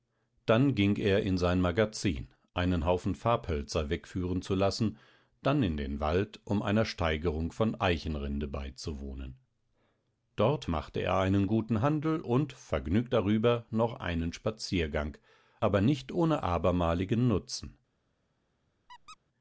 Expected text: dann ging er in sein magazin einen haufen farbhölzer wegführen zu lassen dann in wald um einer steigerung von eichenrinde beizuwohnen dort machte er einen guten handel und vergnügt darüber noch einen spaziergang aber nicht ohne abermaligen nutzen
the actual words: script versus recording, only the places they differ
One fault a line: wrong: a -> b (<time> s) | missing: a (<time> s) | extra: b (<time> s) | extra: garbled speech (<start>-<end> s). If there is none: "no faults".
extra: den (5.8 s)